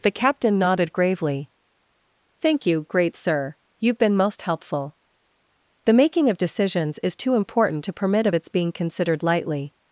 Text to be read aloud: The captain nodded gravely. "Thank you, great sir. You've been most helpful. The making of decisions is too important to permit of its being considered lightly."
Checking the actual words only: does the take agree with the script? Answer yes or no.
yes